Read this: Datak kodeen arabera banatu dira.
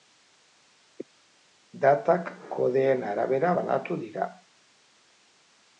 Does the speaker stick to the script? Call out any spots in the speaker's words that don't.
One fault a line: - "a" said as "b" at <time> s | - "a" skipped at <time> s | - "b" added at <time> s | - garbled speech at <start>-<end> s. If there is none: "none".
none